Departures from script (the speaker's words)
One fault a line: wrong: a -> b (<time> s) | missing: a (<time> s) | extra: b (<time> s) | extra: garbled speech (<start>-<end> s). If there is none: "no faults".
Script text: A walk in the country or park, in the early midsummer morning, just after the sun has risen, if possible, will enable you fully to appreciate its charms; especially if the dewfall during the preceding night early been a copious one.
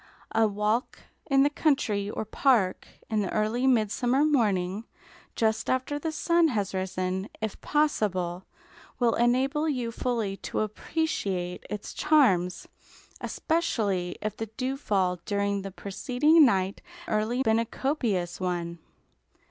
no faults